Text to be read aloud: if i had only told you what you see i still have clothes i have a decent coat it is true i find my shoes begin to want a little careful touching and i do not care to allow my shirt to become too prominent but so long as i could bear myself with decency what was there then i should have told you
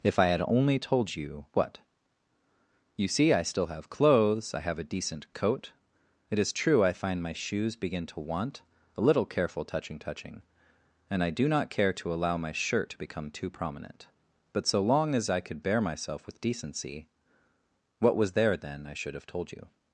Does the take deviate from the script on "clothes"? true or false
false